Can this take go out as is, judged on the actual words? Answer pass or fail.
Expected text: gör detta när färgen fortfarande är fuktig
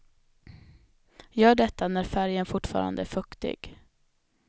pass